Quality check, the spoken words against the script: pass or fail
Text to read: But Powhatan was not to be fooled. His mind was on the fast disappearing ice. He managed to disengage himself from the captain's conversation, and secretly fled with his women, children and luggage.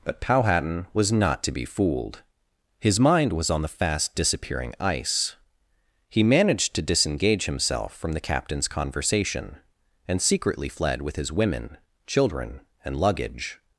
pass